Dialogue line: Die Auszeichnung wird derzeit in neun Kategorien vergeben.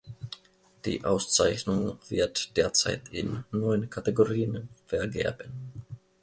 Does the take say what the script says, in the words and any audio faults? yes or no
yes